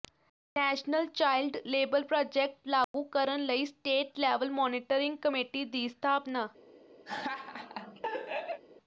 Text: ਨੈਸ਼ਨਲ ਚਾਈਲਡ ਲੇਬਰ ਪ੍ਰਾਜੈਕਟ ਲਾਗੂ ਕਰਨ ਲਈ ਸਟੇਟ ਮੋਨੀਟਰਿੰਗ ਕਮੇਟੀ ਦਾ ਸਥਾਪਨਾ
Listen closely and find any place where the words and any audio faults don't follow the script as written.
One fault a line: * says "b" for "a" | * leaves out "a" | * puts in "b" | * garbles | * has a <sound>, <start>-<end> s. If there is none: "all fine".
* has a dropout, 2.8-2.9 s
* puts in "ਲੈਵਲ"
* says "ਦੀ" for "ਦਾ"
* has a laugh, 7.1-8.6 s